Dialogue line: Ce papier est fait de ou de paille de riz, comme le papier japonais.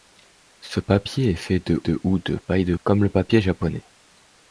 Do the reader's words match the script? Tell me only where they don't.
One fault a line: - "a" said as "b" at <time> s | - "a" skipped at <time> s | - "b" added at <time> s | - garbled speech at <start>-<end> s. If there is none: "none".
- "de" added at 1.9 s
- "riz" skipped at 2.7 s